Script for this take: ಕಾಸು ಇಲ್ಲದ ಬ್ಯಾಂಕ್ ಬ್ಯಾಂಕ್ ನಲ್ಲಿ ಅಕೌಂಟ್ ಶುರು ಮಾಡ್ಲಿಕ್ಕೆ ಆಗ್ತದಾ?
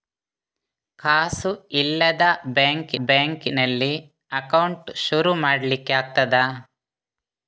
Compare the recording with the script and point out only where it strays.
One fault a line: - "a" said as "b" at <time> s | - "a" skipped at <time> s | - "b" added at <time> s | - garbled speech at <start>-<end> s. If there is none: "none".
none